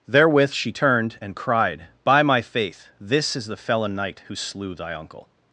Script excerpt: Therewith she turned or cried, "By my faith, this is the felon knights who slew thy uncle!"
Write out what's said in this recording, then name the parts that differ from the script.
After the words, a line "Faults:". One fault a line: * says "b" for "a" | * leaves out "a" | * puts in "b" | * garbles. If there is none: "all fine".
Therewith she turned and cried, "By my faith, this is the felon knight who slew thy uncle!"
Faults:
* says "and" for "or"
* says "knight" for "knights"